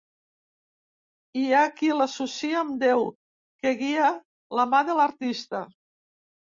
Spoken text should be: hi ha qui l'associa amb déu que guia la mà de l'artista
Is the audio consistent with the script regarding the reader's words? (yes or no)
yes